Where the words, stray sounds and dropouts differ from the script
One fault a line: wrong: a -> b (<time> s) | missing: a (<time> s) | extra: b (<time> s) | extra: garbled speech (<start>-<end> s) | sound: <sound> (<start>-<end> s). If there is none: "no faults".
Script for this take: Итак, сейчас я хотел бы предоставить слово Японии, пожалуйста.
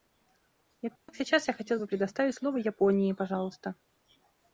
sound: dropout (1.0-1.1 s)